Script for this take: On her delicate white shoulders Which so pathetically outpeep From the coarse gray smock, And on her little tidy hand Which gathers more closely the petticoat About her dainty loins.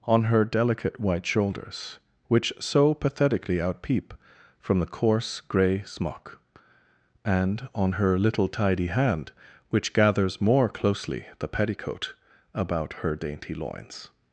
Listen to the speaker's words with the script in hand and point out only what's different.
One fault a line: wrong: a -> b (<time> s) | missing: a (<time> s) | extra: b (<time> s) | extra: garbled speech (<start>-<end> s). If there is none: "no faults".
no faults